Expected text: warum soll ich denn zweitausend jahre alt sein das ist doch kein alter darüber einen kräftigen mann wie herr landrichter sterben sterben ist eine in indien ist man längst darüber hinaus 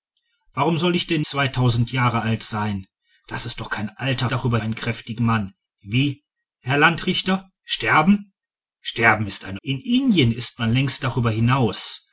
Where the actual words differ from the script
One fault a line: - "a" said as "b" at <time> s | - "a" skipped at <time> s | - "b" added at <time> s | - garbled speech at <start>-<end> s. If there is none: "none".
none